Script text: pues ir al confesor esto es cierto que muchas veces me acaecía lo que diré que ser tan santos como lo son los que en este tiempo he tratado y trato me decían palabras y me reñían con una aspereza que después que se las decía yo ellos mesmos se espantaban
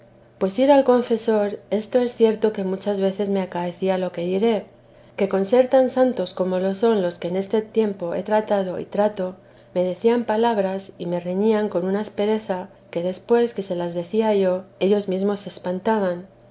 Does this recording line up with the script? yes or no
no